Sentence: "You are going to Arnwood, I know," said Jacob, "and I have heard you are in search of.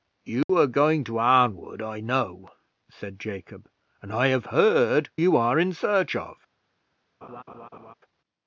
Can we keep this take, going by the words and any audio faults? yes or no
no